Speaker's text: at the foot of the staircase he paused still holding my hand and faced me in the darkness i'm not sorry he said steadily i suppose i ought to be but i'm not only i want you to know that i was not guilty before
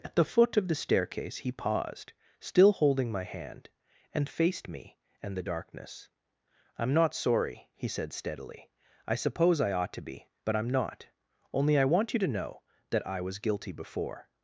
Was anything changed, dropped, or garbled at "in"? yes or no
yes